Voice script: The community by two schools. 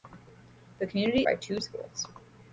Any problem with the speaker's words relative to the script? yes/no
no